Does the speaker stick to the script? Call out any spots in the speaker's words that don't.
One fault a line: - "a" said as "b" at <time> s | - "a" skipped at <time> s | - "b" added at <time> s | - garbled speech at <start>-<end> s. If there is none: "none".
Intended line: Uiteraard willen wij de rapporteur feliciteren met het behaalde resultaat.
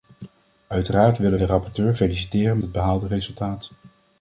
- "wij" skipped at 1.4 s
- "met" skipped at 2.6 s